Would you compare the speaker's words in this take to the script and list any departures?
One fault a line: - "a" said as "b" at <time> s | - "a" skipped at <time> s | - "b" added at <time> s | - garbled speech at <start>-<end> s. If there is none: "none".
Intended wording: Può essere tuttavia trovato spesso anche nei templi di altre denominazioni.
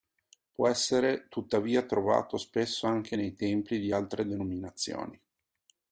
none